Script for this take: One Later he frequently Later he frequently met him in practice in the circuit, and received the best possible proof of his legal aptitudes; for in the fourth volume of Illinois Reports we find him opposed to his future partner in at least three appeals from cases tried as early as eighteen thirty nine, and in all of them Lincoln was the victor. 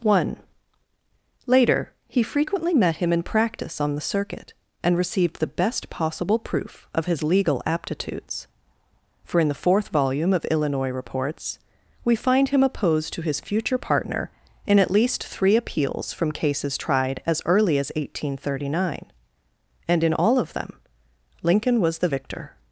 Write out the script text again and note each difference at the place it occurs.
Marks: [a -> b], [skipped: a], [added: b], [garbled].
One Later he frequently [skipped: Later he frequently] met him in practice [in -> on] the circuit, and received the best possible proof of his legal aptitudes; for in the fourth volume of Illinois Reports we find him opposed to his future partner in at least three appeals from cases tried as early as eighteen thirty nine, and in all of them Lincoln was the victor.